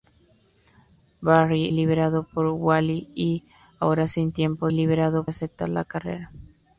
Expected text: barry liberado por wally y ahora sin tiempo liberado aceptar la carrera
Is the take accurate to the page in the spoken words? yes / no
yes